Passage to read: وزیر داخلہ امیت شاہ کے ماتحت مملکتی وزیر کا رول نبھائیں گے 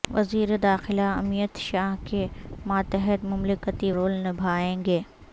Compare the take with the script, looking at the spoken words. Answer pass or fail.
fail